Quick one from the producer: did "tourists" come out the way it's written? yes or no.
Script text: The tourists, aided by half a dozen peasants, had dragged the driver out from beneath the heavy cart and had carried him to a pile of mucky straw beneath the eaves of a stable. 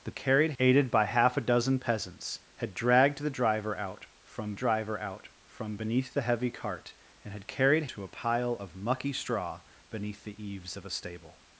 no